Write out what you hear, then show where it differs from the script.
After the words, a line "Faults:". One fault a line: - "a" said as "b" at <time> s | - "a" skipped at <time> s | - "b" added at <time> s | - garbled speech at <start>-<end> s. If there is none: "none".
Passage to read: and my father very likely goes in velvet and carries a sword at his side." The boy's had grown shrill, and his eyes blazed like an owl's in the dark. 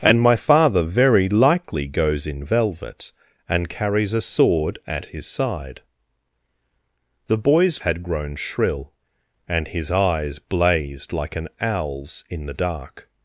and my father very likely goes in velvet and carries a sword at his side." The boy's had grown shrill, and his eyes blazed like an owl's in the dark.
Faults:
none